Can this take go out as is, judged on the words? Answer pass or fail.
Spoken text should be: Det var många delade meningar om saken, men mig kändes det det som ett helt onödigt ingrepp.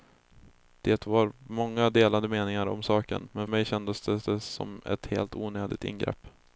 pass